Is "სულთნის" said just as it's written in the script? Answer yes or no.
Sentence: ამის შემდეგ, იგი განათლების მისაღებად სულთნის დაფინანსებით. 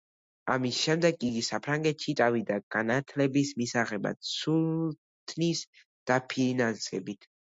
yes